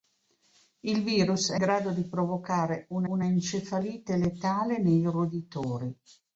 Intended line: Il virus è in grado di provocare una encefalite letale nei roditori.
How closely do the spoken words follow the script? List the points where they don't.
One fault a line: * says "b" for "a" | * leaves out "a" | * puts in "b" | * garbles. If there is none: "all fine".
* leaves out "in"
* puts in "una"